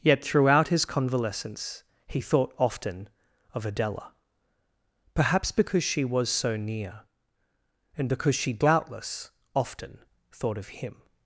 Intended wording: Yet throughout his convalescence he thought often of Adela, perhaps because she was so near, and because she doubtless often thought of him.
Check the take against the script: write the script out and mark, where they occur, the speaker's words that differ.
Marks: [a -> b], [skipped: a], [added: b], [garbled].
Yet throughout his convalescence he thought often of Adela, perhaps because she was so near, and because she doubtless often thought of him.